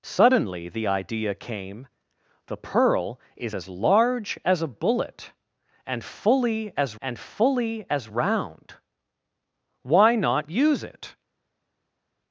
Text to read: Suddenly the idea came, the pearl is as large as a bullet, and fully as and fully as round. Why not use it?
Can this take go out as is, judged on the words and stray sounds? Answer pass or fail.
pass